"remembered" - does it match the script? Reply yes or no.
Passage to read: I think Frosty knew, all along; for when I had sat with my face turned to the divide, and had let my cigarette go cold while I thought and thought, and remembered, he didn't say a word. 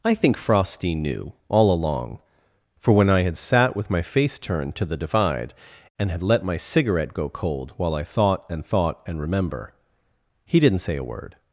no